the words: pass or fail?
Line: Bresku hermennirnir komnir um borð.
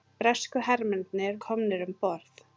pass